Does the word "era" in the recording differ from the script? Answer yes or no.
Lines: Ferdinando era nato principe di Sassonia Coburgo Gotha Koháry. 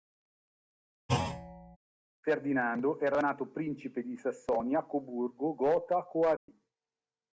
no